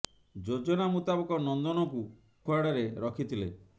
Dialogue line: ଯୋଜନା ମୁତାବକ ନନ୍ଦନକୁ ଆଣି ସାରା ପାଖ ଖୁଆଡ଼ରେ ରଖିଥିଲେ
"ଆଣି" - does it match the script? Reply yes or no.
no